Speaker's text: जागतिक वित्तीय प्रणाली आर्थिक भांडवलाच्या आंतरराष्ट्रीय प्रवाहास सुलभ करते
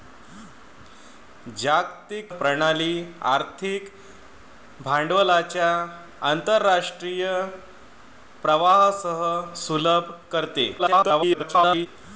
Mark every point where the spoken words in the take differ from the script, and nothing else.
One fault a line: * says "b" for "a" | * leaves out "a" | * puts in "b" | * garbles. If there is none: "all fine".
* leaves out "वित्तीय"
* garbles